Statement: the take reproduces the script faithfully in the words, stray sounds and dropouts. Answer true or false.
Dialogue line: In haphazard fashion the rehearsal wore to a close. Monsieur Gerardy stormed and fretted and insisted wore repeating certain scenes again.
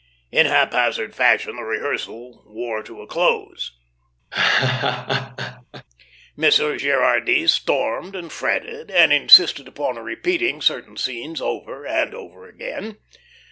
false